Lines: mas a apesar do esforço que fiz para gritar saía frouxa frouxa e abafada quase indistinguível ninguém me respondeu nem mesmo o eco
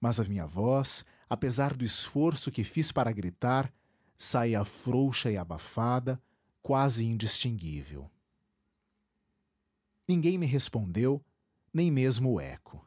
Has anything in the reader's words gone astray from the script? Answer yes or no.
yes